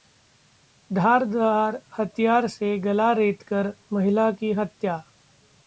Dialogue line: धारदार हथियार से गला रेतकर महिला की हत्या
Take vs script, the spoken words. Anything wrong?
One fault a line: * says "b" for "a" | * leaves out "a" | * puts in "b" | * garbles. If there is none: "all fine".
all fine